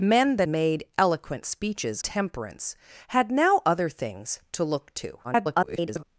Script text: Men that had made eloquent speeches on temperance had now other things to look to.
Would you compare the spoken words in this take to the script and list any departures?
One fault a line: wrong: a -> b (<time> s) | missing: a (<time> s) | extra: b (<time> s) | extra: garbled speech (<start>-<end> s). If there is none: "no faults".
missing: had (0.5 s)
missing: on (2.0 s)
extra: garbled speech (5.2-6.0 s)